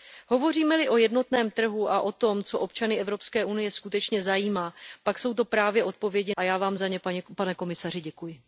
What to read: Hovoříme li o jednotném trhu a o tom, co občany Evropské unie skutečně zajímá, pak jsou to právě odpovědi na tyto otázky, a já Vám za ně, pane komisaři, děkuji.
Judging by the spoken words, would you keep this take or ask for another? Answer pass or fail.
fail